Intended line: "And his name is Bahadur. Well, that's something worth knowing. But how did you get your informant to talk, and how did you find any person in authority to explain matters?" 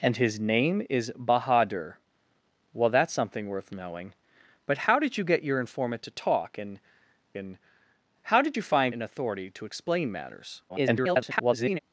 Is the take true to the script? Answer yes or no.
no